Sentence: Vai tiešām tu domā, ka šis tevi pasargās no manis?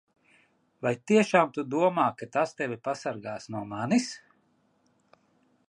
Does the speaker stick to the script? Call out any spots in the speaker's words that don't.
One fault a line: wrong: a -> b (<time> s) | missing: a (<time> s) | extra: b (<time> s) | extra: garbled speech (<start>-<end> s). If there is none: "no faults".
wrong: šis -> tas (2.4 s)